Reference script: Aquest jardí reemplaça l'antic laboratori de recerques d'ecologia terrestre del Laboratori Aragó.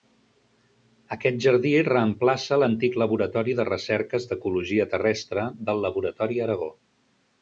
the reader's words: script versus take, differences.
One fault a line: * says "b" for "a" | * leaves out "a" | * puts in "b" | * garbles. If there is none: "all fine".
all fine